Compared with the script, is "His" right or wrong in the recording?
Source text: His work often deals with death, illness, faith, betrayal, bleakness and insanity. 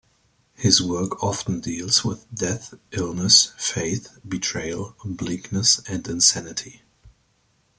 right